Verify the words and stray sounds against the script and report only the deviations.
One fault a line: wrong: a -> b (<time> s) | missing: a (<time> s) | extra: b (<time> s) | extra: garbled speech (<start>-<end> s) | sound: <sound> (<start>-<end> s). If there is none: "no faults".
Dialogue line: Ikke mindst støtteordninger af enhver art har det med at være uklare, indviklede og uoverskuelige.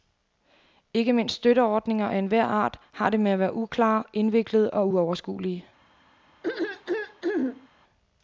sound: throat clearing (6.4-7.7 s)